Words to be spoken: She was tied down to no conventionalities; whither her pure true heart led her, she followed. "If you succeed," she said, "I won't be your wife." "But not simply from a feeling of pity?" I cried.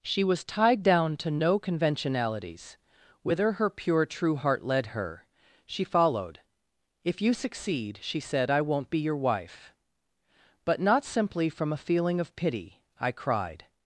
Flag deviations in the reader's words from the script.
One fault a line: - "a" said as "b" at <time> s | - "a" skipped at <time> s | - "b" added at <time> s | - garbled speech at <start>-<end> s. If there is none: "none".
none